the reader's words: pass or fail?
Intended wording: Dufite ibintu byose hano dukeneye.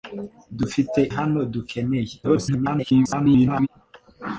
fail